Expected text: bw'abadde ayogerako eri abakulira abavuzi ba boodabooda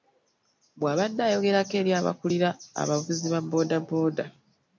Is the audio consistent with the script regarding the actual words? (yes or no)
yes